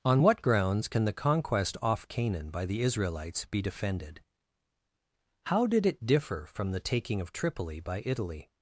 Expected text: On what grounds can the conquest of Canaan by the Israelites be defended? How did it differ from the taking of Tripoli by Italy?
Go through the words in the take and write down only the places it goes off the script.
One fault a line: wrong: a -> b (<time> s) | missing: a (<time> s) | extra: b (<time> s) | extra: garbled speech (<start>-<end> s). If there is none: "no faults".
wrong: of -> off (1.8 s)